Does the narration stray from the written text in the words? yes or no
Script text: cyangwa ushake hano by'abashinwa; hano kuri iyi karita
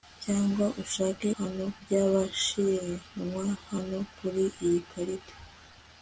no